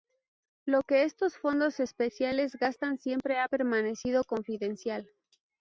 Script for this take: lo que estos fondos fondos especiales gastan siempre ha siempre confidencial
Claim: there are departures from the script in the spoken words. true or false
true